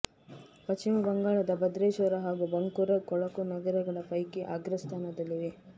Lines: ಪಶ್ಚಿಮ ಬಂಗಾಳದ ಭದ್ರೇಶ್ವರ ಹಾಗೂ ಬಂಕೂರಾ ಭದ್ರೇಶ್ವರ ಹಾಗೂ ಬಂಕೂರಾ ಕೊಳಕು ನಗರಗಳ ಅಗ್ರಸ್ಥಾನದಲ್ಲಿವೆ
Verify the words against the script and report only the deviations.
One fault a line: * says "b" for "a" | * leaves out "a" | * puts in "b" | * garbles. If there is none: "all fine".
* leaves out "ಭದ್ರೇಶ್ವರ ಹಾಗೂ ಬಂಕೂರಾ"
* puts in "ಪೈಕಿ"